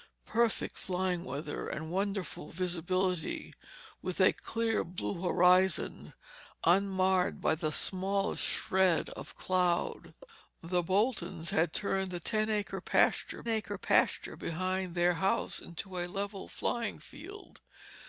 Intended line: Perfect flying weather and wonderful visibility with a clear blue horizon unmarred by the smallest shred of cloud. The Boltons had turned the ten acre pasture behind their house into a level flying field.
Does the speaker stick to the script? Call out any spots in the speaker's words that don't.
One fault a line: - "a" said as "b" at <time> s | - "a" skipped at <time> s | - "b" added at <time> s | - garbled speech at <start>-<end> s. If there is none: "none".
- "acre pasture" added at 13.5 s